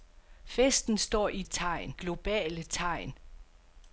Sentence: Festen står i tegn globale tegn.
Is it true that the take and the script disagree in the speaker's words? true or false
false